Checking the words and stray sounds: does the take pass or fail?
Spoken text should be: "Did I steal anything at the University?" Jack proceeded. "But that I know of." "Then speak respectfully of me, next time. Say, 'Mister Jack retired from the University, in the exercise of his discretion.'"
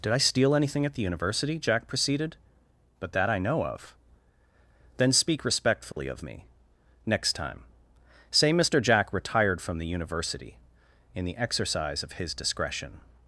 fail